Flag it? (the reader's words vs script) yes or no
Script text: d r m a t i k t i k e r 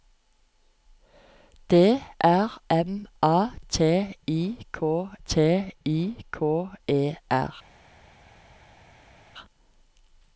no